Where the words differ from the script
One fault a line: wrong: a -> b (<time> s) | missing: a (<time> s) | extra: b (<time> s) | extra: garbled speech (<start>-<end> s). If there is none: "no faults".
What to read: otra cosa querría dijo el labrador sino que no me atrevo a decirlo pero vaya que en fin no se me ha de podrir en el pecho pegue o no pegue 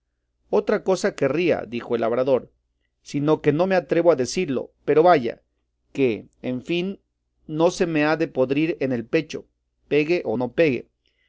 no faults